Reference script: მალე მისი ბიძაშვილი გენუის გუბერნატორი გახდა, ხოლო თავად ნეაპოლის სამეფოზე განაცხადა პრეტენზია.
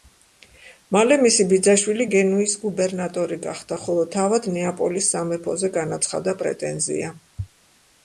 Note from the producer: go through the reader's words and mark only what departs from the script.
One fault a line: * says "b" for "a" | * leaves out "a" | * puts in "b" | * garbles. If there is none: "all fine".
all fine